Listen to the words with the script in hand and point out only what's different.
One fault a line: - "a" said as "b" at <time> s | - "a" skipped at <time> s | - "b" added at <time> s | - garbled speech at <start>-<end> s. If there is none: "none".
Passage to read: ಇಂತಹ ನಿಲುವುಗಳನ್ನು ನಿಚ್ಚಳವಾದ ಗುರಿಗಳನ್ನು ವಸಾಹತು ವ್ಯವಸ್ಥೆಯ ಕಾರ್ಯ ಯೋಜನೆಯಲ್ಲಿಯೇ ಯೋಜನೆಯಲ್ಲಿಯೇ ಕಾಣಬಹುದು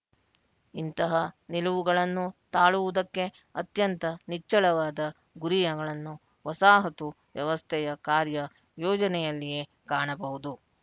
- "ತಾಳುವುದಕ್ಕೆ ಅತ್ಯಂತ" added at 2.5 s
- "ಯೋಜನೆಯಲ್ಲಿಯೇ" skipped at 9.6 s